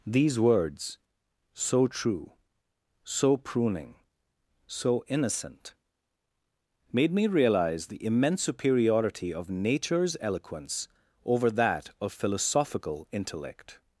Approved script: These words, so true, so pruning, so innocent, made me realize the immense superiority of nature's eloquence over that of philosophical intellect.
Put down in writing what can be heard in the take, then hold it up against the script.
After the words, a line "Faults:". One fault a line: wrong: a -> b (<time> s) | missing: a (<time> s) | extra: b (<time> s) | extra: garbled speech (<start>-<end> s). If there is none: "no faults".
These words, so true, so pruning, so innocent, made me realize the immense superiority of nature's eloquence over that of philosophical intellect.
Faults:
no faults